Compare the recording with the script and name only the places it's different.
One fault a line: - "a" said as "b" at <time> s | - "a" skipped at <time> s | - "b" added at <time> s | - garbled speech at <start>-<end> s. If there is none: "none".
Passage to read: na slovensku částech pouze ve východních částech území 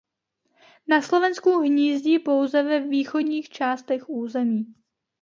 - "částech" said as "hnízdí" at 1.6 s